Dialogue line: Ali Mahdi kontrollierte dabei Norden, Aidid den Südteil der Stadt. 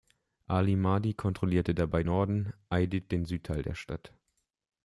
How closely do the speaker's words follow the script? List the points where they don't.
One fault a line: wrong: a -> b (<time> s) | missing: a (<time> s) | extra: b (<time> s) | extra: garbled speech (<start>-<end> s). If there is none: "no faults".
no faults